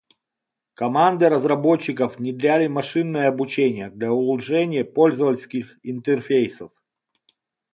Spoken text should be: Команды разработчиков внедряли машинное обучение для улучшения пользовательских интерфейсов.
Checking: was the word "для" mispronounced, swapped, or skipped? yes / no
no